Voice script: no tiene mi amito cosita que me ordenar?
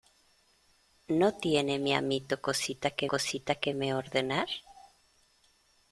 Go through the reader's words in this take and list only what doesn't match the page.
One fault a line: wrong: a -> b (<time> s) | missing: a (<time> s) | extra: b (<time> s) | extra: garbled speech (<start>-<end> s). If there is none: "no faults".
extra: cosita que (3.1 s)